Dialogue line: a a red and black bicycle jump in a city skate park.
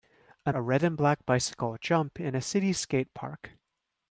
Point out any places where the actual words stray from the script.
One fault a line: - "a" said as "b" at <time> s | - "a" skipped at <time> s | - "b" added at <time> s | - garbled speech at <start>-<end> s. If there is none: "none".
none